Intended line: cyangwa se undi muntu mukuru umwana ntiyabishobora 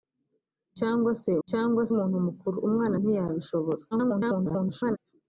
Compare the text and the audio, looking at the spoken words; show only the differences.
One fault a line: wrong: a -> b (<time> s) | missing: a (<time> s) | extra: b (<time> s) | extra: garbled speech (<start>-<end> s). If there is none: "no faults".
wrong: undi -> cyangwa (1.5 s)
extra: garbled speech (3.9-5.0 s)